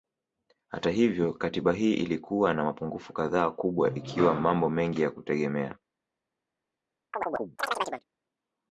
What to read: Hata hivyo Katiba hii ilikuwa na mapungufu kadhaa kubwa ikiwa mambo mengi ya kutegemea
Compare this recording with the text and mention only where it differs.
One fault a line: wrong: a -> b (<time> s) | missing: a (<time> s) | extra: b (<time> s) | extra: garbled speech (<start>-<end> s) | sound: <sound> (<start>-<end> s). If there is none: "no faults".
sound: chirp (7.1-8.0 s)